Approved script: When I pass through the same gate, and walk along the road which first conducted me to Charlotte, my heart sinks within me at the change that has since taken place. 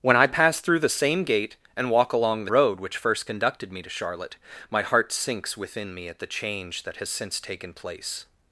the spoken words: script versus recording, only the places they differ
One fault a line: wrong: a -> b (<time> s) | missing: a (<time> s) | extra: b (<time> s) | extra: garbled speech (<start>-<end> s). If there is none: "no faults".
no faults